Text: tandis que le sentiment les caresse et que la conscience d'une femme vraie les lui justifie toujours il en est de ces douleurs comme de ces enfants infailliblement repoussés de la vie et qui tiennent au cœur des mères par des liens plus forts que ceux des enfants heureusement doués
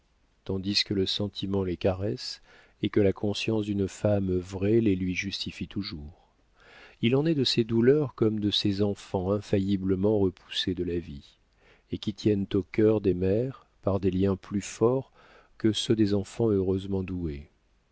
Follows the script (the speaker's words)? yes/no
yes